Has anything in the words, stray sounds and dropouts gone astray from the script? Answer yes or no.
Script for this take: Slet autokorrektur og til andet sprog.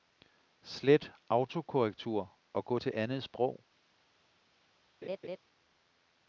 yes